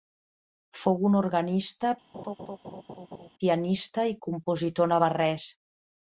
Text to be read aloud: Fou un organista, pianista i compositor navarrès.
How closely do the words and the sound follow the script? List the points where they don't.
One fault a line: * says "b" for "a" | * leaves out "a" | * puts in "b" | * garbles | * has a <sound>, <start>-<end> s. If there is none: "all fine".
* has a laugh, 2.1-3.3 s